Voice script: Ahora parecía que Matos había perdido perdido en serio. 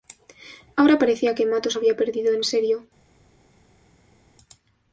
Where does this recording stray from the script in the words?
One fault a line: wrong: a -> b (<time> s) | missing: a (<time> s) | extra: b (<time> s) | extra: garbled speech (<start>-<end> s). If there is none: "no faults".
missing: perdido (2.3 s)